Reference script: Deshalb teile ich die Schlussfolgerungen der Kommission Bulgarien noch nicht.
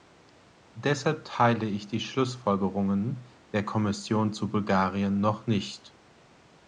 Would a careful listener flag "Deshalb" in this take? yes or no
no